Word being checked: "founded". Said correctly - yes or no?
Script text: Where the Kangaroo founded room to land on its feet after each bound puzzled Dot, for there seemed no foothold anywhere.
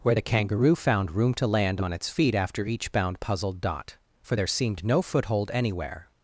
no